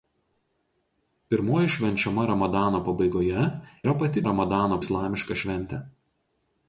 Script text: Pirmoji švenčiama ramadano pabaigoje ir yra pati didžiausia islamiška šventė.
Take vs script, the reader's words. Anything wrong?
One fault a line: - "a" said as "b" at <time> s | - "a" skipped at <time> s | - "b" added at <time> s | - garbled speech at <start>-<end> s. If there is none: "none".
- "ir" skipped at 3.5 s
- "didžiausia" said as "ramadano" at 4.3 s